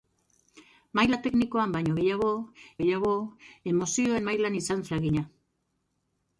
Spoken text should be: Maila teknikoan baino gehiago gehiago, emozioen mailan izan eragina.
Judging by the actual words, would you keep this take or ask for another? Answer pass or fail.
pass